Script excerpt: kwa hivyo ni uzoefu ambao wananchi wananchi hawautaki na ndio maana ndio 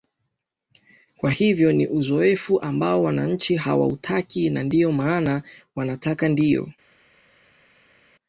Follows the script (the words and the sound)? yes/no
no